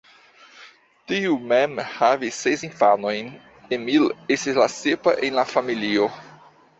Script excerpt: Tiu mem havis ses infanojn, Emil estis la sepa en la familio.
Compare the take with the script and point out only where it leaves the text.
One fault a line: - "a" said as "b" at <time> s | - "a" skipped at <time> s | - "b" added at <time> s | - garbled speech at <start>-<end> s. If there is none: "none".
none